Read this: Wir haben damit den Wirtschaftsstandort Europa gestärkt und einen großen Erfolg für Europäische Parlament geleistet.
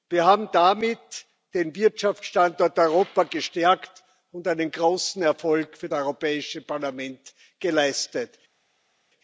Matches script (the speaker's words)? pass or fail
pass